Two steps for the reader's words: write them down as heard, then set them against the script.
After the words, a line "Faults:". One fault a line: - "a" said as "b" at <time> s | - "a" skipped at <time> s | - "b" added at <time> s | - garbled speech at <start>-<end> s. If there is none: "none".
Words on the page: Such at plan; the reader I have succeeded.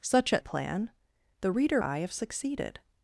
Such at plan; the reader I have succeeded.
Faults:
none